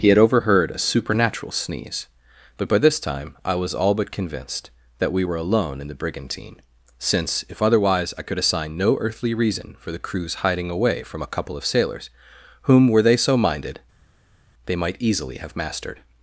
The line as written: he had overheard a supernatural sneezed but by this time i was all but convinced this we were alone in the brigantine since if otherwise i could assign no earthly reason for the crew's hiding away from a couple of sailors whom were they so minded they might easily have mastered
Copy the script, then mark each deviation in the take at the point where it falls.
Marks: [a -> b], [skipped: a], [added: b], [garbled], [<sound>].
he had overheard a supernatural [sneezed -> sneeze] but by this time i was all but convinced [this -> that] we were alone in the brigantine since if otherwise i could assign no earthly reason for the crew's hiding away from a couple of sailors whom were they so minded they might easily have mastered